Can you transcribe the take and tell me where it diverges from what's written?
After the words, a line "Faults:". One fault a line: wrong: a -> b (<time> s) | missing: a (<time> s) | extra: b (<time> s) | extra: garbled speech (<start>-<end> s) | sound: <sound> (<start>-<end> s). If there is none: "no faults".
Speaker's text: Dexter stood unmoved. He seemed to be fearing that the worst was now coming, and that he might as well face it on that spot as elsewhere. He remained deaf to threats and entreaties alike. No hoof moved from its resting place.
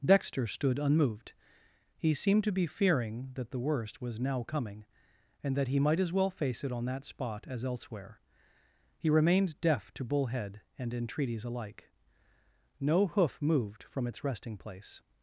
Dexter stood unmoved. He seemed to be fearing that the worst was now coming, and that he might as well face it on that spot as elsewhere. He remained deaf to bullhead and entreaties alike. No hoof moved from its resting place.
Faults:
wrong: threats -> bullhead (10.0 s)